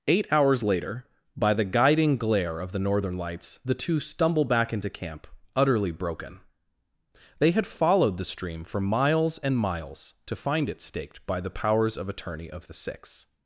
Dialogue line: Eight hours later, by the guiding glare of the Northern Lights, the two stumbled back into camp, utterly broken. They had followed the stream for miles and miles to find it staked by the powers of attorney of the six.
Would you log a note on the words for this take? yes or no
yes